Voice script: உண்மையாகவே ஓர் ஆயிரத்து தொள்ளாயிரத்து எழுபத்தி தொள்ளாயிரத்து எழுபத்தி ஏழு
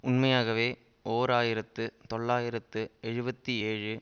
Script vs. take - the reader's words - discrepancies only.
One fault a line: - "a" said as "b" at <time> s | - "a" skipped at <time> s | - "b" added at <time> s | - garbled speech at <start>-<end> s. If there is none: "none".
- "தொள்ளாயிரத்து எழுபத்தி" skipped at 3.5 s